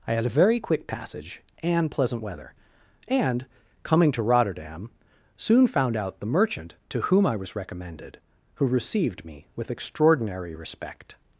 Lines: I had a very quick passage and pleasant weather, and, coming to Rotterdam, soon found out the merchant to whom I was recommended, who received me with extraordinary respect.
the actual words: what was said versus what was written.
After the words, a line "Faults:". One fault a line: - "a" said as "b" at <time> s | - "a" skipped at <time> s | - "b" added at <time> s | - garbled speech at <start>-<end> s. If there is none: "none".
I had a very quick passage and pleasant weather, and, coming to Rotterdam, soon found out the merchant to whom I was recommended, who received me with extraordinary respect.
Faults:
none